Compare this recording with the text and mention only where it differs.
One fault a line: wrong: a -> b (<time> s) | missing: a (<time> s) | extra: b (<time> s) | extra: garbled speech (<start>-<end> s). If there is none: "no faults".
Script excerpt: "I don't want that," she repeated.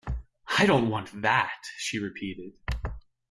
no faults